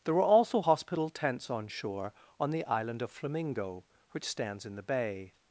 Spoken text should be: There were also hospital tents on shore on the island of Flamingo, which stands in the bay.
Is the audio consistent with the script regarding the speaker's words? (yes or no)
yes